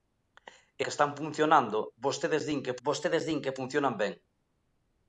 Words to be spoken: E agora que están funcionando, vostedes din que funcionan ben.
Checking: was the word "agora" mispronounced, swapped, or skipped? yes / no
yes